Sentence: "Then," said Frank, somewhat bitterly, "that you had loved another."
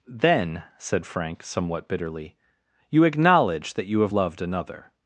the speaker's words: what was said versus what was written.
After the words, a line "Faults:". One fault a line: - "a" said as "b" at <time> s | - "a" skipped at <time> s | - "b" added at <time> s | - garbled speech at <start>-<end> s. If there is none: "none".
"Then," said Frank, somewhat bitterly, "you acknowledge that you have loved another."
Faults:
- "you acknowledge" added at 2.9 s
- "had" said as "have" at 4.0 s